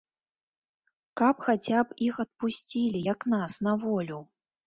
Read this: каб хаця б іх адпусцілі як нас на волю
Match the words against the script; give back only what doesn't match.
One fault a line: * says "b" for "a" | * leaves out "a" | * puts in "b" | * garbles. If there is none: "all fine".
all fine